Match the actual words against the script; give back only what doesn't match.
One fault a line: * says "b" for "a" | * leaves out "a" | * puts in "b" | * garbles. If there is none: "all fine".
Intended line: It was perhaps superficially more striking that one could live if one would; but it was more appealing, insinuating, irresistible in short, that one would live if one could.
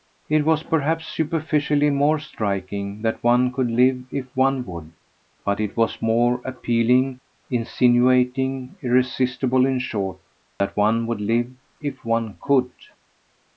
all fine